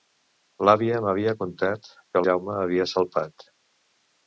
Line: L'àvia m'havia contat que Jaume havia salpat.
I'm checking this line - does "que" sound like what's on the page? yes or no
yes